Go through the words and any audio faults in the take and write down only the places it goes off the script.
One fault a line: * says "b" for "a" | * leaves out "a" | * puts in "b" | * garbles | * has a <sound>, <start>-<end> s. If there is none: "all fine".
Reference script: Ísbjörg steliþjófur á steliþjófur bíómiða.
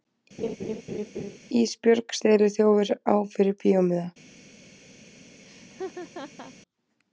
* has a laugh, 0.4-1.4 s
* says "fyrir" for "steliþjófur"
* has a laugh, 5.5-6.5 s